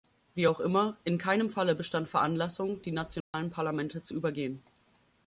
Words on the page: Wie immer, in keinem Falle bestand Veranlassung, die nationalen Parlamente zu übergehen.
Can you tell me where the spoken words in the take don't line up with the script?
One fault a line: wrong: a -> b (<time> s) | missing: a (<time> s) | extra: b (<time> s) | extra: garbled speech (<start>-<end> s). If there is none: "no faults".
extra: auch (0.5 s)